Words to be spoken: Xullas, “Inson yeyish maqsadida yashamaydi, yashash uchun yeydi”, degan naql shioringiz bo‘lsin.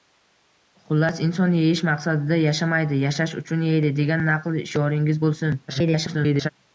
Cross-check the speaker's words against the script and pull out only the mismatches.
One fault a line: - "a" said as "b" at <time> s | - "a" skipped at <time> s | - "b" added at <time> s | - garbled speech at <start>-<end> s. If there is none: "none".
- garbled speech at 5.7-6.5 s